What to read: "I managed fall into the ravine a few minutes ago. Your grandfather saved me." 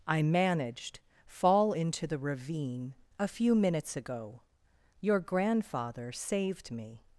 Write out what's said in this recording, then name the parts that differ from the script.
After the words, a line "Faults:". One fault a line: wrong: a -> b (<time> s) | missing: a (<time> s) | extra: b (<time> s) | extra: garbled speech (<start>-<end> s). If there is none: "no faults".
"I managed fall into the ravine a few minutes ago. Your grandfather saved me."
Faults:
no faults